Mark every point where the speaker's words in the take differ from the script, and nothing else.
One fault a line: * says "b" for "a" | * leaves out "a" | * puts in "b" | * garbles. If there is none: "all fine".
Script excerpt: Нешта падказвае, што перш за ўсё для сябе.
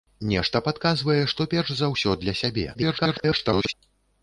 * garbles